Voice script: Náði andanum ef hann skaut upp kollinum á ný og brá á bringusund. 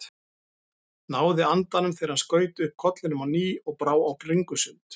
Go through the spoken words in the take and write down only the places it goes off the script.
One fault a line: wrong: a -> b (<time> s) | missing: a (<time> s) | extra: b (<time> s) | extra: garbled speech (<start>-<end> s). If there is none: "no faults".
wrong: ef -> þegar (2.0 s)